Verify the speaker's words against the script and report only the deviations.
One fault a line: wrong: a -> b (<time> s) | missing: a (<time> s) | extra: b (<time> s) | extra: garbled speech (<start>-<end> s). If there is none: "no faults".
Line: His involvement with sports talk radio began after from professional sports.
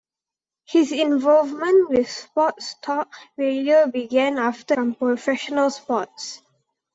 no faults